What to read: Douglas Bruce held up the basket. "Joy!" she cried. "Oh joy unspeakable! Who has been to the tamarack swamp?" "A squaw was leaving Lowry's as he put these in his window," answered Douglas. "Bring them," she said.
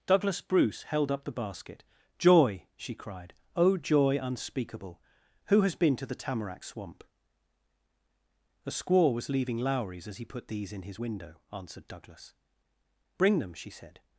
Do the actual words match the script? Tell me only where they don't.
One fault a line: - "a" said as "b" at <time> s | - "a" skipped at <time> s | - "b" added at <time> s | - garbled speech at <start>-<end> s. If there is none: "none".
none